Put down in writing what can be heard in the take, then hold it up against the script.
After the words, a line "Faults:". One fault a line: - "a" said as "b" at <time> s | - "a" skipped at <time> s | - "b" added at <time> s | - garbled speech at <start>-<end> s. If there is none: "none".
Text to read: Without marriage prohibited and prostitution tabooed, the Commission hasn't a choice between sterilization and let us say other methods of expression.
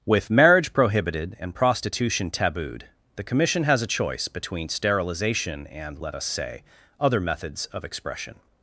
With marriage prohibited and prostitution tabooed, the Commission has a choice between sterilization and let us say other methods of expression.
Faults:
- "Without" said as "With" at 0.1 s
- "hasn't" said as "has" at 3.6 s